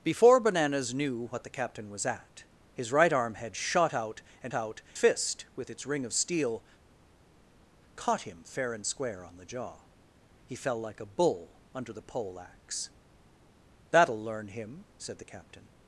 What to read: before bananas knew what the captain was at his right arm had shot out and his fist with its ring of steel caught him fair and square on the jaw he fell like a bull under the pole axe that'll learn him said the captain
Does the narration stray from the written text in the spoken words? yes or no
yes